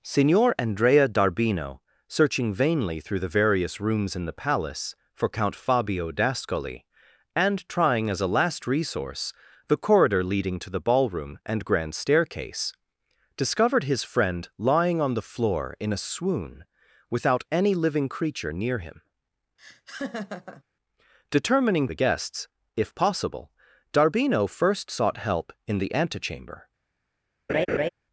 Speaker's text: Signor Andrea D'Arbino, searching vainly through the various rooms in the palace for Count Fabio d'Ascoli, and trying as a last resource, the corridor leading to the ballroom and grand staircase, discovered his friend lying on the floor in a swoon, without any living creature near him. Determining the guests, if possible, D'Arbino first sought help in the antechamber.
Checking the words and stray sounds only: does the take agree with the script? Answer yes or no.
no